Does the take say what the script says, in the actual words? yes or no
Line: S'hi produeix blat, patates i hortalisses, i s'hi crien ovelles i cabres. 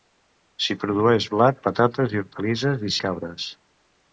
no